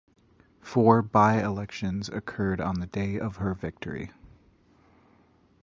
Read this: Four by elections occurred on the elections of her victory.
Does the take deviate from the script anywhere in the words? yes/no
yes